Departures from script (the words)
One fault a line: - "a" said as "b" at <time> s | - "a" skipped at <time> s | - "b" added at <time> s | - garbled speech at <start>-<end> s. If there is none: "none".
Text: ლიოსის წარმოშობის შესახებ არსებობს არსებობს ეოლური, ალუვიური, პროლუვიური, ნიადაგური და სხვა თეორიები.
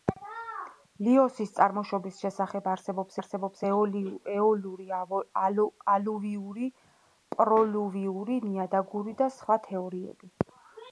none